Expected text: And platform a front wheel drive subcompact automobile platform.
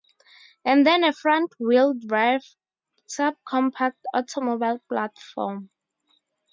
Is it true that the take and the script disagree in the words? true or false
true